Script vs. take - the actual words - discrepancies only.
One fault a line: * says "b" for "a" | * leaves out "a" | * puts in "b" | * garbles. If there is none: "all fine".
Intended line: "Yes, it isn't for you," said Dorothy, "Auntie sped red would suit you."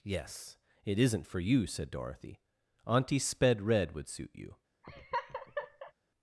all fine